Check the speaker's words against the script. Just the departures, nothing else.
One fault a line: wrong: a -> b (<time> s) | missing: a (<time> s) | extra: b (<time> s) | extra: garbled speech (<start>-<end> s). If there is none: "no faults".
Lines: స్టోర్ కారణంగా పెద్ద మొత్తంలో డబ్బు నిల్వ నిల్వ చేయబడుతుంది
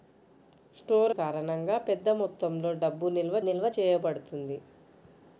no faults